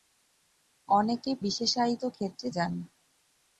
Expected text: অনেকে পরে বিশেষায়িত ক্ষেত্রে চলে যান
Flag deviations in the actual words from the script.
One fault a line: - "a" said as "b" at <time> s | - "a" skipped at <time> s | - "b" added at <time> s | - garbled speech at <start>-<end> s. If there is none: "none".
- "পরে" skipped at 1.3 s
- "চলে" skipped at 2.5 s